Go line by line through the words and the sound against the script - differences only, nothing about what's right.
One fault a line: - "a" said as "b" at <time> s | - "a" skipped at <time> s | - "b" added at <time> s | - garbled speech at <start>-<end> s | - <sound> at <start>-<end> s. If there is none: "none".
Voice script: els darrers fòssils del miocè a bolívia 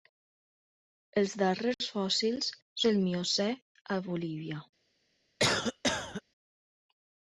- cough at 5.4-6.2 s